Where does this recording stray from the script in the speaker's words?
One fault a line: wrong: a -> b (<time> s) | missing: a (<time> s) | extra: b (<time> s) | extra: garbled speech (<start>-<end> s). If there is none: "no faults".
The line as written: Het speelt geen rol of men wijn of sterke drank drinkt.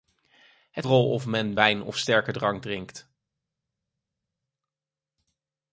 missing: speelt geen (0.9 s)